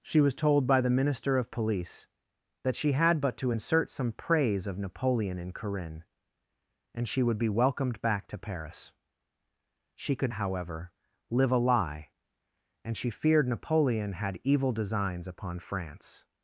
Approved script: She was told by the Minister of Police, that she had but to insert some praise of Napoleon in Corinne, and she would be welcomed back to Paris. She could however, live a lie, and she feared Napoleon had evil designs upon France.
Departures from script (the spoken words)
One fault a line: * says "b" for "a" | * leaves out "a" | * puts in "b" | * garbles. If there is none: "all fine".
all fine